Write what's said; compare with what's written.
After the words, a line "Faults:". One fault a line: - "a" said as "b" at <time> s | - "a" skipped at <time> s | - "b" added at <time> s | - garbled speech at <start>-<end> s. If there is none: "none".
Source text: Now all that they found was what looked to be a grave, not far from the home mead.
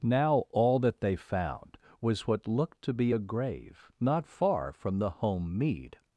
Now all that they found was what looked to be a grave, not far from the home mead.
Faults:
none